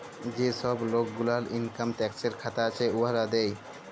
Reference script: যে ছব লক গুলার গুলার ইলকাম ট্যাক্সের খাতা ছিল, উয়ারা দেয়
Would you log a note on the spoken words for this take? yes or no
yes